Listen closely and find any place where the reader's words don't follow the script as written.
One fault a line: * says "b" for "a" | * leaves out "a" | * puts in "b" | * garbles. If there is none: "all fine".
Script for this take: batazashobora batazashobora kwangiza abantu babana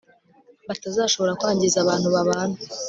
* leaves out "batazashobora"